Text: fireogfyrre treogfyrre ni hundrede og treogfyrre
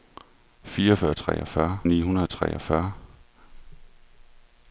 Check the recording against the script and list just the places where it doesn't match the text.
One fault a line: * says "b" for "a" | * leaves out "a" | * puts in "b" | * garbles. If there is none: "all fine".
all fine